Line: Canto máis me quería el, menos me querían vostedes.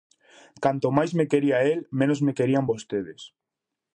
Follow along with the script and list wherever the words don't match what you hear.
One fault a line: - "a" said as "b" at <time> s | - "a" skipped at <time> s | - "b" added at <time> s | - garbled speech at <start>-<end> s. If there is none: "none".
none